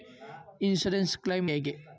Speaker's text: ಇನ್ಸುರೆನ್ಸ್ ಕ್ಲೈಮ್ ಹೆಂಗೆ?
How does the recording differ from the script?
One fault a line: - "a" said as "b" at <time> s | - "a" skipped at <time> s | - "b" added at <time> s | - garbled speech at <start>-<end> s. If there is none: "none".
none